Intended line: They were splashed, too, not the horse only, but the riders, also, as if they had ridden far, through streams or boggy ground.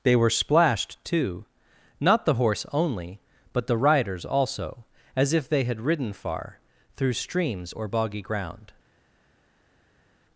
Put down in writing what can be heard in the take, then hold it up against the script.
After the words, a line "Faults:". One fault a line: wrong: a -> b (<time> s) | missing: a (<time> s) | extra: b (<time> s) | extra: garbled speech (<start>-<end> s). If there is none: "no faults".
They were splashed, too, not the horse only, but the riders, also, as if they had ridden far, through streams or boggy ground.
Faults:
no faults